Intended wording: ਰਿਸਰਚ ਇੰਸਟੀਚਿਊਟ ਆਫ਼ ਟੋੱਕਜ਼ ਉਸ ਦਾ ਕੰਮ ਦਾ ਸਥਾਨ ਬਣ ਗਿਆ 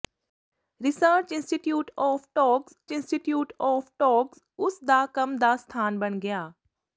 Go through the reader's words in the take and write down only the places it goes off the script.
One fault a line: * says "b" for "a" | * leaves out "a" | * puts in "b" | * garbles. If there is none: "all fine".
* puts in "ਇੰਸਟੀਚਿਊਟ ਆਫ਼ ਟੋੱਕਜ਼"